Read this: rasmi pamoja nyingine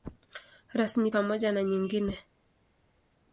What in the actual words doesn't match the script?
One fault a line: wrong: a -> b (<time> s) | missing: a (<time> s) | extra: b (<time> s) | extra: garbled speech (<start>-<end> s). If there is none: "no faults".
extra: na (1.5 s)